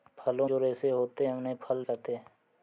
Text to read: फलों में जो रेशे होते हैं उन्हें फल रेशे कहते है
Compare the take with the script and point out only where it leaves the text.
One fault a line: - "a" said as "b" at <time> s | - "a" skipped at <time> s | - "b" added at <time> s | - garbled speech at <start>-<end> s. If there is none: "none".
- "में" skipped at 0.5 s
- "रेशे" skipped at 1.8 s